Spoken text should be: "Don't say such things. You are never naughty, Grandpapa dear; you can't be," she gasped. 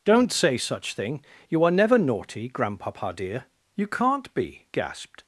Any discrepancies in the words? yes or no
yes